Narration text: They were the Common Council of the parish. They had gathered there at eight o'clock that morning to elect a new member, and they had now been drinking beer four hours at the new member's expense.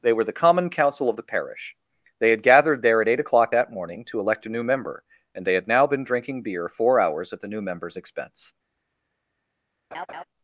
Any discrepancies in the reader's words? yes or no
no